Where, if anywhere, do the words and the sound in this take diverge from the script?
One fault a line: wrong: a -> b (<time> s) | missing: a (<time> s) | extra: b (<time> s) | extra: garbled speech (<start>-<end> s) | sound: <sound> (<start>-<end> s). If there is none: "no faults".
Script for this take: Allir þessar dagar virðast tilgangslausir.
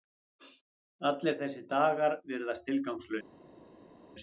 no faults